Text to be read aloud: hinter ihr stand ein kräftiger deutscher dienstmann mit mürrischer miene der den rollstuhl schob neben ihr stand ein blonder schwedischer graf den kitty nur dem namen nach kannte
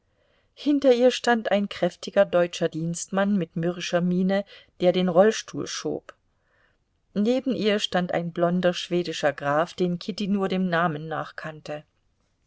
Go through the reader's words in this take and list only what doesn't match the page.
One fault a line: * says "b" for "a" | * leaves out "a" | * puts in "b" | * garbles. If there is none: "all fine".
all fine